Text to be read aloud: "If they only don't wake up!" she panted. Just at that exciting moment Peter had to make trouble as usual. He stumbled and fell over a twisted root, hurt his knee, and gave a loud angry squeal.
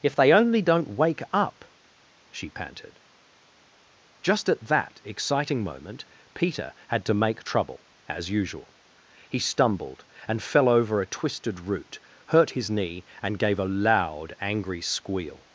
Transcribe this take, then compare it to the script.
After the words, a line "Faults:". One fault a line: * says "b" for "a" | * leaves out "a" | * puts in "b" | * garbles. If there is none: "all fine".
"If they only don't wake up!" she panted. Just at that exciting moment Peter had to make trouble as usual. He stumbled and fell over a twisted root, hurt his knee, and gave a loud angry squeal.
Faults:
all fine